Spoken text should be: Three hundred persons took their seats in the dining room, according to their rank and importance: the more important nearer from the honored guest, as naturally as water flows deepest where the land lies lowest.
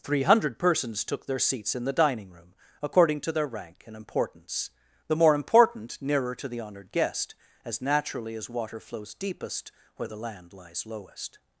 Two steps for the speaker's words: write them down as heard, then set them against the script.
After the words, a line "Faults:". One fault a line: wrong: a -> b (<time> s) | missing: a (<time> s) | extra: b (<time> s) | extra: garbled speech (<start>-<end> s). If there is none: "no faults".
Three hundred persons took their seats in the dining room, according to their rank and importance: the more important nearer to the honored guest, as naturally as water flows deepest where the land lies lowest.
Faults:
wrong: from -> to (6.3 s)